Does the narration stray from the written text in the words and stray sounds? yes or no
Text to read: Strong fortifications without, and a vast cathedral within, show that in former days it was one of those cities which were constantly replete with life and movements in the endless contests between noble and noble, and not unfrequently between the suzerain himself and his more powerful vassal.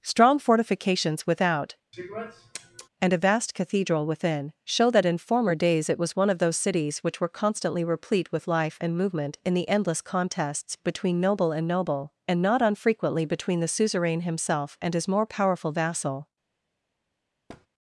yes